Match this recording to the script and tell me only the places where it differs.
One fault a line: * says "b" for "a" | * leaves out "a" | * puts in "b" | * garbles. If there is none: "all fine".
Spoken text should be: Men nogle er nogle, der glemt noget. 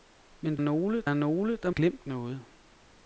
all fine